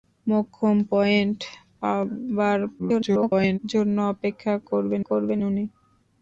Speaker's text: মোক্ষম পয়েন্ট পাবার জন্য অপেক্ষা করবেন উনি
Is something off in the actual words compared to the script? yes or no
yes